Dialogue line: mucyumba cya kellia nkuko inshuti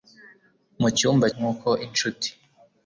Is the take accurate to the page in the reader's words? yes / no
no